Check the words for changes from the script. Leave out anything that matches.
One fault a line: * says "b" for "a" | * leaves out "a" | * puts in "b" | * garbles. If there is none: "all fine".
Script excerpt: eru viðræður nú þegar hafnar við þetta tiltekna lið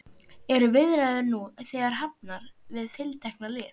* leaves out "þetta"